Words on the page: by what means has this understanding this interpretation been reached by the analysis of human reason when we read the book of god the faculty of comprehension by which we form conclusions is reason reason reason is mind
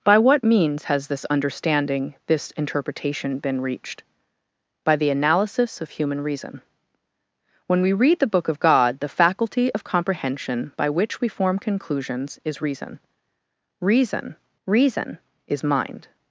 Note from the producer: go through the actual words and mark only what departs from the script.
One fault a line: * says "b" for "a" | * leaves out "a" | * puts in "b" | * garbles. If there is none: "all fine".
all fine